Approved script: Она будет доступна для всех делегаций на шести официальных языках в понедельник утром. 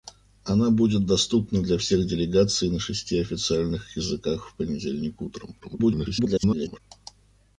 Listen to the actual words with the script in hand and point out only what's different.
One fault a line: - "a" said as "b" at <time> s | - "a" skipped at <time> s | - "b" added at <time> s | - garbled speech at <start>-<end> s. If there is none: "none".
- garbled speech at 5.6-6.8 s